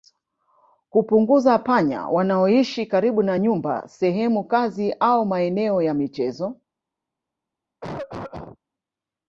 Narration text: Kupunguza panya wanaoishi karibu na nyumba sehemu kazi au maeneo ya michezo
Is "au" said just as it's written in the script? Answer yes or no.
yes